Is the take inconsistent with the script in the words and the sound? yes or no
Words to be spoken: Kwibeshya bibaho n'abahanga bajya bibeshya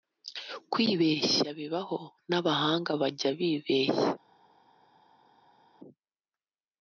no